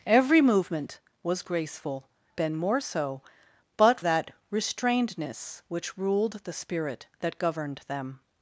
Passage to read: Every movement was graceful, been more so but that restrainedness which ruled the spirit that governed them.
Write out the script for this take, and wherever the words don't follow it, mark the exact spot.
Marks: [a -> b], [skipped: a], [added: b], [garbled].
Every movement was graceful, been more so but that restrainedness which ruled the spirit that governed them.